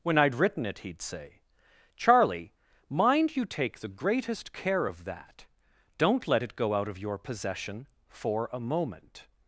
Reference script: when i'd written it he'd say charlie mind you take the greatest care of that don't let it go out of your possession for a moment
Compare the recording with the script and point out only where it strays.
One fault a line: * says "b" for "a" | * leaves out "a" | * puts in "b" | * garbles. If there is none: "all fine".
all fine